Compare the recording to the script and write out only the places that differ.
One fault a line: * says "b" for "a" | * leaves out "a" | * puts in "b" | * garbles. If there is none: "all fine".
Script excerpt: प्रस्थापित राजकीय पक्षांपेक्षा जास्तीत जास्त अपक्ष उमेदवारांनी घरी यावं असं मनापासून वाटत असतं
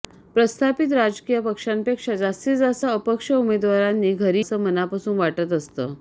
* leaves out "यावं"